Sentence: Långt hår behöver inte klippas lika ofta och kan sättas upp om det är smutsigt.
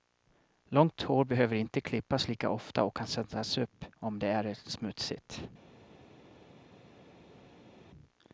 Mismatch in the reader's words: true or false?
false